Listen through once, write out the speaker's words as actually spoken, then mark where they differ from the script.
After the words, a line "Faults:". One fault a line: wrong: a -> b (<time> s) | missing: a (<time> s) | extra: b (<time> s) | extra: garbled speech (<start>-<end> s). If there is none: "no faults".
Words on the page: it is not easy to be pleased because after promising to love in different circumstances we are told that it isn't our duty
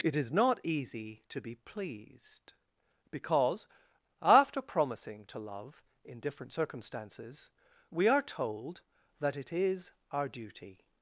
it is not easy to be pleased because after promising to love in different circumstances we are told that it is our duty
Faults:
wrong: isn't -> is (9.5 s)